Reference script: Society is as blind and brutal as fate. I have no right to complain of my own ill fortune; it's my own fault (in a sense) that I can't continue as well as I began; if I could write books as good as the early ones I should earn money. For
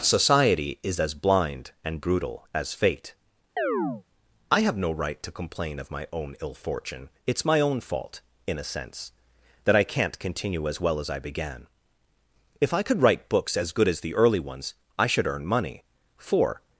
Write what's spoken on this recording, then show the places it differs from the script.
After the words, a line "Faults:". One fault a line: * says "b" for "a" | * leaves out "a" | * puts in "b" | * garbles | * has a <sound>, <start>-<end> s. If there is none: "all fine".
Society is as blind and brutal as fate. I have no right to complain of my own ill fortune; it's my own fault (in a sense) that I can't continue as well as I began; if I could write books as good as the early ones I should earn money. For
Faults:
* has a chirp, 3.6-4.0 s